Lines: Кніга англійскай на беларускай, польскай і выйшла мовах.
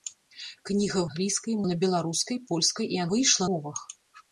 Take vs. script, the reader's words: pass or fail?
pass